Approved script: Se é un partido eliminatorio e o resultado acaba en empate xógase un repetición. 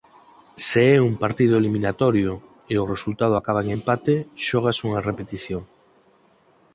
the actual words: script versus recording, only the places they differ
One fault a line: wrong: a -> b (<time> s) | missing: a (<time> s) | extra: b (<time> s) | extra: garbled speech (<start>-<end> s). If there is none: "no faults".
wrong: un -> unha (4.9 s)